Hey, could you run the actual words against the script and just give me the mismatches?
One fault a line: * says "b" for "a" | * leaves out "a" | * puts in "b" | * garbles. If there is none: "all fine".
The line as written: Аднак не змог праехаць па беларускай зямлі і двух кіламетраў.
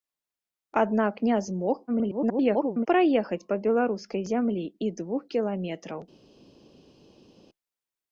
* garbles